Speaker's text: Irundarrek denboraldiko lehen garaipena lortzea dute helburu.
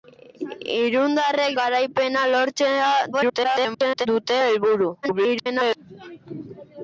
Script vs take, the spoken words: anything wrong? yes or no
yes